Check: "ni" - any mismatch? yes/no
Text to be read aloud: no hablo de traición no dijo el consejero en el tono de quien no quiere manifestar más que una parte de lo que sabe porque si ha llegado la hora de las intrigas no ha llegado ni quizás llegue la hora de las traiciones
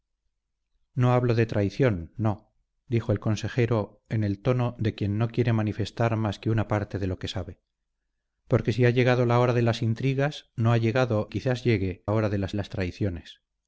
yes